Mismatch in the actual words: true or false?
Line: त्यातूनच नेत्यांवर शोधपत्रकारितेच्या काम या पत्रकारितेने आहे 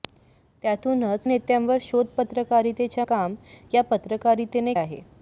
false